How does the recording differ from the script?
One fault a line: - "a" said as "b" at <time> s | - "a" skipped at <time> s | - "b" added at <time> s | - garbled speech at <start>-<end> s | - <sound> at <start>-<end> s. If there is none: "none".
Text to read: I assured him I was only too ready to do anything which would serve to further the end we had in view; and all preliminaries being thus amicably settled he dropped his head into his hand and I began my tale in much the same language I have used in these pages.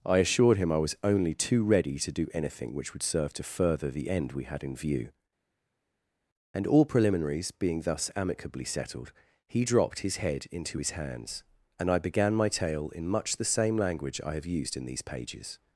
- "hand" said as "hands" at 10.9 s